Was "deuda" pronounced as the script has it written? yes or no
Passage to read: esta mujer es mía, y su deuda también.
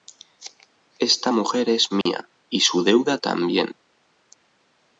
yes